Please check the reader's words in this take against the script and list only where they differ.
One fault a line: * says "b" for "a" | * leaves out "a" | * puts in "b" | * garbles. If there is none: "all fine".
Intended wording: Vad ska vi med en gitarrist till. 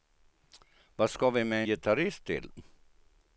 * leaves out "en"